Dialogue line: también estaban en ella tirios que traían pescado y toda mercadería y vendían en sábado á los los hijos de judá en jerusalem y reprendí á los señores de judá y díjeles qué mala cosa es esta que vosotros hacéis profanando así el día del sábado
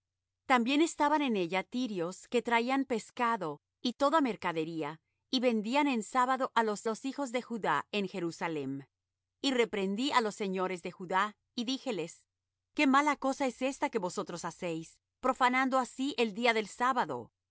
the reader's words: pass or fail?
pass